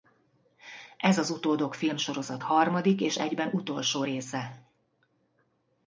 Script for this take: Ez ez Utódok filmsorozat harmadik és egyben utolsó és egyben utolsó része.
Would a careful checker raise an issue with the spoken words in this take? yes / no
yes